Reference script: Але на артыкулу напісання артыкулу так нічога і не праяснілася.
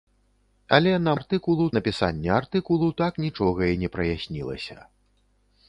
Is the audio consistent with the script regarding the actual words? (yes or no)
yes